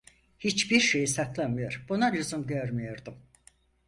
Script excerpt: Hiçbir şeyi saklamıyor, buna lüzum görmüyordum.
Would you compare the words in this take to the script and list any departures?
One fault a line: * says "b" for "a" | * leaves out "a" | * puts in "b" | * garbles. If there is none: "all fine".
all fine